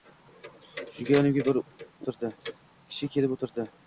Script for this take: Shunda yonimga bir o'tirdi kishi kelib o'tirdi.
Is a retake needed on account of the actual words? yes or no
no